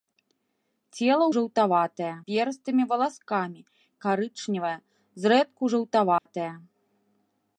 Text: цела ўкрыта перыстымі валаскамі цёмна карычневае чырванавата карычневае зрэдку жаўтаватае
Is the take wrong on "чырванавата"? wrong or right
wrong